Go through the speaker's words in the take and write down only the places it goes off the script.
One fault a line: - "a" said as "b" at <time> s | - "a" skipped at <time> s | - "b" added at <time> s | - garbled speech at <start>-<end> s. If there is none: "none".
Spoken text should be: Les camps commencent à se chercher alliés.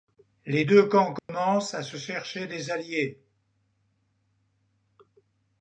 - "deux" added at 0.6 s
- "des" added at 2.5 s